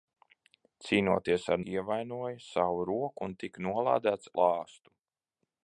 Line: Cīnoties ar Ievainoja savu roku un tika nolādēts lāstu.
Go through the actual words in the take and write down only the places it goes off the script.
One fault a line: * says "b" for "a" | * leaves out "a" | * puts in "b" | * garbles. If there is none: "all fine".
all fine